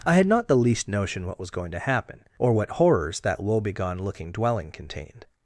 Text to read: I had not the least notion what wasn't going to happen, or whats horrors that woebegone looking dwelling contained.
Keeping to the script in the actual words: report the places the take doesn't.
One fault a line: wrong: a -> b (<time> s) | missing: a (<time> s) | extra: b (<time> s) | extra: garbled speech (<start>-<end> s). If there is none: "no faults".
wrong: wasn't -> was (1.4 s)
wrong: whats -> what (2.5 s)